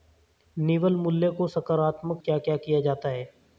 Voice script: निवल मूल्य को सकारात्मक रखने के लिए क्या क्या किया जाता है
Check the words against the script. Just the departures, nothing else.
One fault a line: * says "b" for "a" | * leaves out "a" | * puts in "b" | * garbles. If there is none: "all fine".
* leaves out "रखने के लिए"